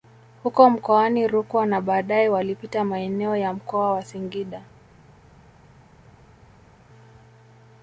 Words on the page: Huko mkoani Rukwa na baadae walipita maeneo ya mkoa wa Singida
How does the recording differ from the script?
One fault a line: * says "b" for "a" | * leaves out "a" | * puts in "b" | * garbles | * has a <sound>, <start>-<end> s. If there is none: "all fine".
all fine